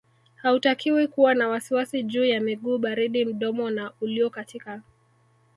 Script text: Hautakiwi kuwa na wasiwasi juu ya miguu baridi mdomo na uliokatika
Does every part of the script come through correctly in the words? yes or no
yes